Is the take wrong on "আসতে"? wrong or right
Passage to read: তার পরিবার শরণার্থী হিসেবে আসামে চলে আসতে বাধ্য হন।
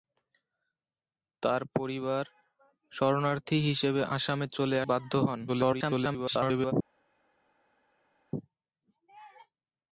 wrong